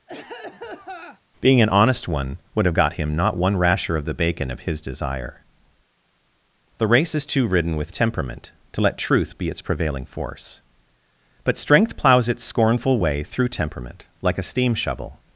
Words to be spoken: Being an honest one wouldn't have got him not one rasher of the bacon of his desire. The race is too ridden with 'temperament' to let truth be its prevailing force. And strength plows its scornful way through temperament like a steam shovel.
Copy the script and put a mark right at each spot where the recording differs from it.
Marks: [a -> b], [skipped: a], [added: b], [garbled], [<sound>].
[cough] Being an honest one [wouldn't -> would] have got him not one rasher of the bacon of his desire. The race is too ridden with 'temperament' to let truth be its prevailing force. [And -> But] strength plows its scornful way through temperament like a steam shovel.